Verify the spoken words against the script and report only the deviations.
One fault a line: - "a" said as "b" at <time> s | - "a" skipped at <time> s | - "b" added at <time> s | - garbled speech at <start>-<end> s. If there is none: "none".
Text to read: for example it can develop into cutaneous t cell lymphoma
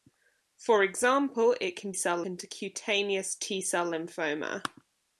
- "develop" said as "cell" at 1.9 s